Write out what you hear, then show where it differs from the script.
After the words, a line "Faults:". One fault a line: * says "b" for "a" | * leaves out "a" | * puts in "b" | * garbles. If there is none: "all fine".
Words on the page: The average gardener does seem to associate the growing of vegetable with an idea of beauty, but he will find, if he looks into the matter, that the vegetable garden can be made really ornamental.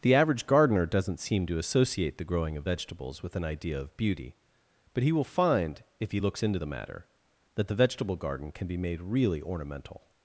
The average gardener doesn't seem to associate the growing of vegetables with an idea of beauty, but he will find, if he looks into the matter, that the vegetable garden can be made really ornamental.
Faults:
* says "doesn't" for "does"
* says "vegetables" for "vegetable"